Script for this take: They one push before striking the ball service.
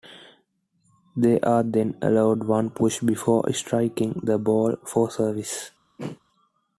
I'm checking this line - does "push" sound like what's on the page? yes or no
yes